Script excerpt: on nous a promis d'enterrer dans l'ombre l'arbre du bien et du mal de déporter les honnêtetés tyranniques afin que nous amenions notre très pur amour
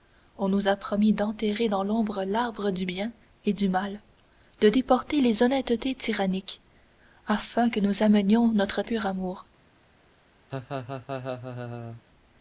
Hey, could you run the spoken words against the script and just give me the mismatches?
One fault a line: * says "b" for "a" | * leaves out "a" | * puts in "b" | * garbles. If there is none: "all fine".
* leaves out "très"